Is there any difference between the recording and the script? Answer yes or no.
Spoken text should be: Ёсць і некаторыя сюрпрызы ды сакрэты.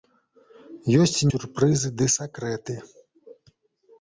yes